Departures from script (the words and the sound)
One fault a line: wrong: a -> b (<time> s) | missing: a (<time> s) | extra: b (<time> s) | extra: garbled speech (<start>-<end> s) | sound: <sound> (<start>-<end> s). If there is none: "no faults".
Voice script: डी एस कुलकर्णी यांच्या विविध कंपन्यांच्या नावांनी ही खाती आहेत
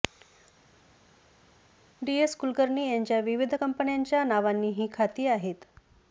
no faults